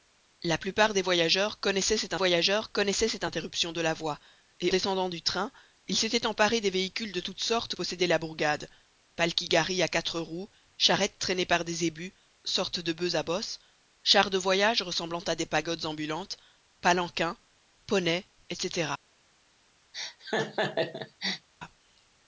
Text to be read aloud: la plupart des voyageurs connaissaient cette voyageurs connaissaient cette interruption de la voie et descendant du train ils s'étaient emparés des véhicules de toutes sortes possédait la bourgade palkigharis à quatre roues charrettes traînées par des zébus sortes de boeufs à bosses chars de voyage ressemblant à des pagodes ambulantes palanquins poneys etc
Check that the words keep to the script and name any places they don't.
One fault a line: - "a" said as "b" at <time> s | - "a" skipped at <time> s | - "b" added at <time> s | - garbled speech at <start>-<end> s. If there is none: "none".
none